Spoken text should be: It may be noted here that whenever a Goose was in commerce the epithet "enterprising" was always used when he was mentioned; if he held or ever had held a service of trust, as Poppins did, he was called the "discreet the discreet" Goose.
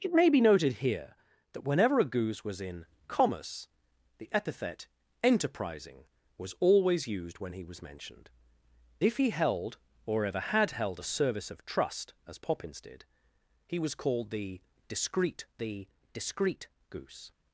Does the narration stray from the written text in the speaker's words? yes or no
no